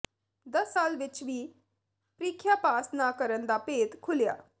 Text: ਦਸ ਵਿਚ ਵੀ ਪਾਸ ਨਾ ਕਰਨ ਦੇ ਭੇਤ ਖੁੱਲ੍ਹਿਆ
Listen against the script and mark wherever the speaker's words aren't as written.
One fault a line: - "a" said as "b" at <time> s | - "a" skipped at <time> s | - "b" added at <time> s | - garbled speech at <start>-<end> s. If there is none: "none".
- "ਸਾਲ" added at 0.7 s
- "ਪ੍ਰੀਖਿਆ" added at 2.2 s
- "ਦੇ" said as "ਦਾ" at 3.5 s